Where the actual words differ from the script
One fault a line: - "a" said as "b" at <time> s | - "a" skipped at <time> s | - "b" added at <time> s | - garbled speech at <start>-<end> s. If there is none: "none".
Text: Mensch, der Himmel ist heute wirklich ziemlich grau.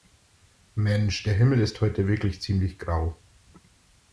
none